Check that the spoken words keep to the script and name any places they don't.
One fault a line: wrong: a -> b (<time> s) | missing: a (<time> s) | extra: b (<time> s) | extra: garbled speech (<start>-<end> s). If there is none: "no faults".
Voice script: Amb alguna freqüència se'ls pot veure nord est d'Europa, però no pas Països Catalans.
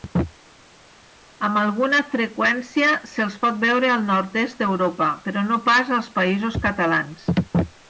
extra: al (4.0 s)
extra: als (6.0 s)